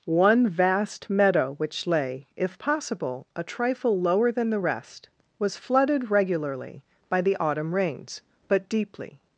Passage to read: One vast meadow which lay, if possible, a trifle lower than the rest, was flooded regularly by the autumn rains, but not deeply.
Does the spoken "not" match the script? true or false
false